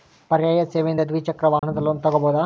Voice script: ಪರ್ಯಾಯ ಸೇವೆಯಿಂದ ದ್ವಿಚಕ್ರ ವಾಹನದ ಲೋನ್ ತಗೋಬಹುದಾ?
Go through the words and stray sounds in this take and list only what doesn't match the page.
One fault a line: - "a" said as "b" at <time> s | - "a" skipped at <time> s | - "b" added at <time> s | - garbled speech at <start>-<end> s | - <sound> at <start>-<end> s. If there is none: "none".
- dropout at 1.6-1.6 s